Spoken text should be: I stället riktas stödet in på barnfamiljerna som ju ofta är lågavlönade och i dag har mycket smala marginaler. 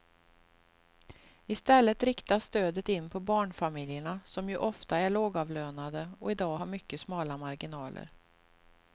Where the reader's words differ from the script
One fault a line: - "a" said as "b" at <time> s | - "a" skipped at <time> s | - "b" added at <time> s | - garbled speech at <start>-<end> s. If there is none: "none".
none